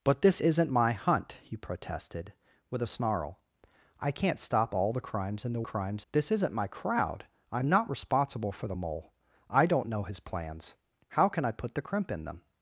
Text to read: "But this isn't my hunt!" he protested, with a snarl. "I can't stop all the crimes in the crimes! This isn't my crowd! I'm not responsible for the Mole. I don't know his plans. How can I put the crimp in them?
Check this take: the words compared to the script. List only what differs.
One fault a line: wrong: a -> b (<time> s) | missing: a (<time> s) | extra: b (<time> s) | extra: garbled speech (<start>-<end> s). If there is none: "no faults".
no faults